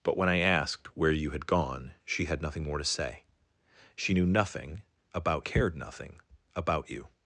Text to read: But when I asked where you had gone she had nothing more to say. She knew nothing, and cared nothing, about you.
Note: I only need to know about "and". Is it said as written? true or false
false